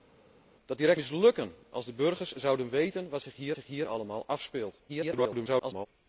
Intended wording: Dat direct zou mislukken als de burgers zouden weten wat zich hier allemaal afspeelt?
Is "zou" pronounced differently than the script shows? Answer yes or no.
yes